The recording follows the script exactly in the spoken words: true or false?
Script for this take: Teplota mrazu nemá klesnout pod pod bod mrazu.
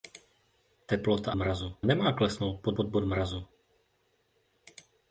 true